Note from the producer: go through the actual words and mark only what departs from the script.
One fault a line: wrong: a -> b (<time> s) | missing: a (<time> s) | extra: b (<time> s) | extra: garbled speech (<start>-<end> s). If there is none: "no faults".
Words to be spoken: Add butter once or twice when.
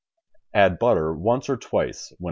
no faults